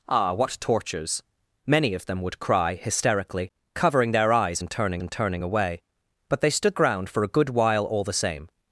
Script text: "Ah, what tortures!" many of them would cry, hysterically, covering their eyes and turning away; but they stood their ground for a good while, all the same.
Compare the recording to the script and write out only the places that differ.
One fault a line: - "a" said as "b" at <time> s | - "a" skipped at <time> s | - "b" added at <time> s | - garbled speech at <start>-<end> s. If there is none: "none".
- "and turning" added at 5.0 s
- "their" skipped at 6.7 s